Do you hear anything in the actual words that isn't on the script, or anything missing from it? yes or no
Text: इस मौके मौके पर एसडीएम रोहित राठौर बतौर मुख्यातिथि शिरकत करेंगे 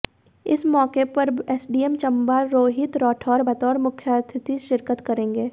yes